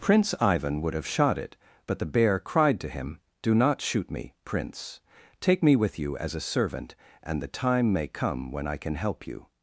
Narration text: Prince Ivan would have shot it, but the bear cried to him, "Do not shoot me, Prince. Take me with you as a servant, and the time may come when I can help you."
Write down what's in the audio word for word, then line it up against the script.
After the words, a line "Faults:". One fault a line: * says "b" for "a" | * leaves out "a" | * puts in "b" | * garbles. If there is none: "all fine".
Prince Ivan would have shot it, but the bear cried to him, "Do not shoot me, Prince. Take me with you as a servant, and the time may come when I can help you."
Faults:
all fine